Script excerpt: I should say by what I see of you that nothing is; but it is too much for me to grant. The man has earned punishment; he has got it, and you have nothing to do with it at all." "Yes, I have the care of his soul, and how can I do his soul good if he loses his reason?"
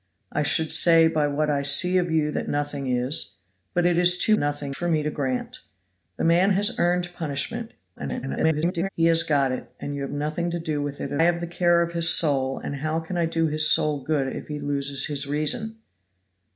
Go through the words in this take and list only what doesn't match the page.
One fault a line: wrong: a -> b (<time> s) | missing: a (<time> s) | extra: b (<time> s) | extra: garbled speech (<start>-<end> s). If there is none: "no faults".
wrong: much -> nothing (4.4 s)
extra: garbled speech (8.0-8.9 s)
missing: all Yes I (11.2 s)